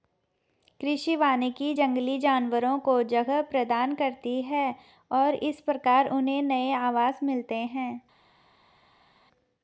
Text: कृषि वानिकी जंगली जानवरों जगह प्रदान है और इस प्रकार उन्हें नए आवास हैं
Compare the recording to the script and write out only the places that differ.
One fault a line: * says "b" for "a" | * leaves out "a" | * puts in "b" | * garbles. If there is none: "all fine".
* puts in "को"
* puts in "करती"
* puts in "मिलते"